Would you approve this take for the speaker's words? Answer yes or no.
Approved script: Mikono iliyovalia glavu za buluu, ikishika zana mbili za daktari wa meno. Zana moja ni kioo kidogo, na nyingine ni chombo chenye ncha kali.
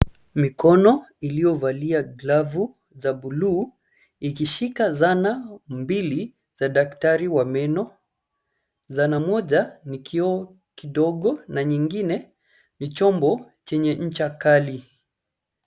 yes